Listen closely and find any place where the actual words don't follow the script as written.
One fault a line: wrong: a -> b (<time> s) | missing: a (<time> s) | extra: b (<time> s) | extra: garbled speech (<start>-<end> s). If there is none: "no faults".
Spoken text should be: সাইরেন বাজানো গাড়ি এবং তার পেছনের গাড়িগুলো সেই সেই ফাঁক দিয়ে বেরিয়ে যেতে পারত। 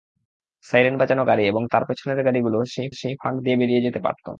no faults